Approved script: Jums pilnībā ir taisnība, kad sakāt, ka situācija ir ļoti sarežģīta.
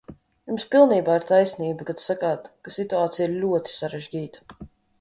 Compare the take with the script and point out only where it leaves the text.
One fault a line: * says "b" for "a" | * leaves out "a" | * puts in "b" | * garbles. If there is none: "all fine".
all fine